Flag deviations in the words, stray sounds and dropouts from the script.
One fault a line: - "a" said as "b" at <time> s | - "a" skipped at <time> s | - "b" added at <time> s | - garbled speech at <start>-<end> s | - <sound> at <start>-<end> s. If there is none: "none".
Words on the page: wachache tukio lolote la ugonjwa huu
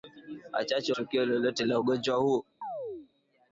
- chirp at 2.6-3.1 s